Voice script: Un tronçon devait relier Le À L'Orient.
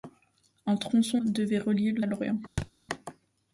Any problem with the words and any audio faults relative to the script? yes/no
yes